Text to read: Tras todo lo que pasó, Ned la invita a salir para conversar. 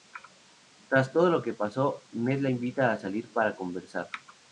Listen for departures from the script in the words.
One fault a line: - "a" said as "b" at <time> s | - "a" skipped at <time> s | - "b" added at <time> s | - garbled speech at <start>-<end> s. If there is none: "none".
none